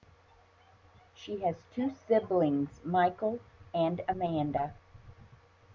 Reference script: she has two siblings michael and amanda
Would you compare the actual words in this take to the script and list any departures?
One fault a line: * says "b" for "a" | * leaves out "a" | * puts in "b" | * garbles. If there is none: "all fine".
all fine